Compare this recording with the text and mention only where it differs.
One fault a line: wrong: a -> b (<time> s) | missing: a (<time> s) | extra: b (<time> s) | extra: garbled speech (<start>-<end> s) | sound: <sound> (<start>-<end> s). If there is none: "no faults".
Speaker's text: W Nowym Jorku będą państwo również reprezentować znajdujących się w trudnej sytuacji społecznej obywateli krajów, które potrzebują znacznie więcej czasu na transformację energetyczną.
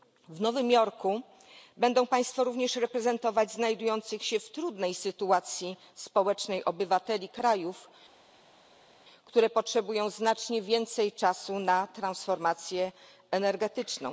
no faults